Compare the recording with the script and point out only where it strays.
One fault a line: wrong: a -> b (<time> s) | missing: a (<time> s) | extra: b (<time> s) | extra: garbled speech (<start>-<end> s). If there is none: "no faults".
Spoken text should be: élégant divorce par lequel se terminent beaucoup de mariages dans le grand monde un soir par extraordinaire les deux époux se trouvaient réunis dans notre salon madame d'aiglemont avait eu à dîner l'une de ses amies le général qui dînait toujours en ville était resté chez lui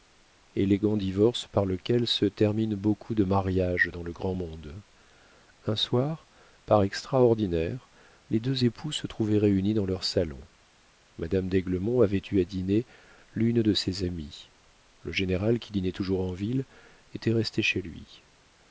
wrong: notre -> leur (9.9 s)